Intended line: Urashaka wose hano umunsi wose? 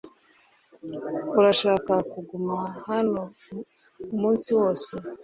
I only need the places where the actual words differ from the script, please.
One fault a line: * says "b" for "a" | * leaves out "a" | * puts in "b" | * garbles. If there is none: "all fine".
* says "kuguma" for "wose"